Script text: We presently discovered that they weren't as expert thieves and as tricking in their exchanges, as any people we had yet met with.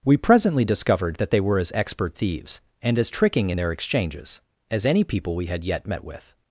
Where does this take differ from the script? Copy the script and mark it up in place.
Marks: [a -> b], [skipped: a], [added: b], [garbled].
We presently discovered that they [weren't -> were] as expert thieves and as tricking in their exchanges, as any people we had yet met with.